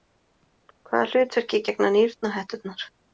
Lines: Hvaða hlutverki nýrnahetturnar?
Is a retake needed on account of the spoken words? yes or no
yes